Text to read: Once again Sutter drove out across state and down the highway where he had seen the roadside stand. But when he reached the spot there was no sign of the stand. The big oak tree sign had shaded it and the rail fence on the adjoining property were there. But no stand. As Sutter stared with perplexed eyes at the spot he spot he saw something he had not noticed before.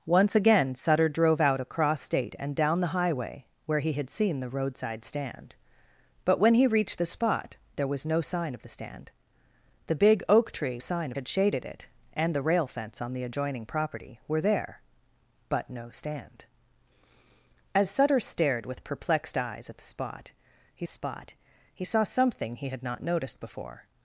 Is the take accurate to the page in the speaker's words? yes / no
yes